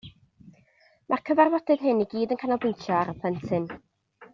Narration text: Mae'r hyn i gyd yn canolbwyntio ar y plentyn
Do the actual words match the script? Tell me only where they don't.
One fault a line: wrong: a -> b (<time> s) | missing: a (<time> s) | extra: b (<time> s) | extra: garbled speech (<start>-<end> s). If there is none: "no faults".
extra: cyfarfodydd (1.3 s)